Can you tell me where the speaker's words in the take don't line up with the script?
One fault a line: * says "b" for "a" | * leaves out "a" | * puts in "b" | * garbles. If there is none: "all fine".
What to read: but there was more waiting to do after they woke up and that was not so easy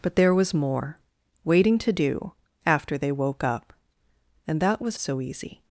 * leaves out "not"